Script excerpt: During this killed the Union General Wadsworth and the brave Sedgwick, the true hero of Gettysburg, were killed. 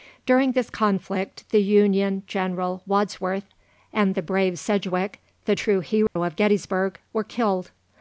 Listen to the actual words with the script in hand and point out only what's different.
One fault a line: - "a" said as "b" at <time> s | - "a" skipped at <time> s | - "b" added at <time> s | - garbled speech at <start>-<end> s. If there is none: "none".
- "killed" said as "conflict" at 0.7 s